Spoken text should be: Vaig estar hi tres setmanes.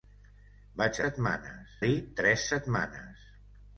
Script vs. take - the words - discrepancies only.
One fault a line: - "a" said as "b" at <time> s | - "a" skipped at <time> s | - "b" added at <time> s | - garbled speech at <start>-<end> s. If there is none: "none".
- "estar" said as "setmanes" at 1.0 s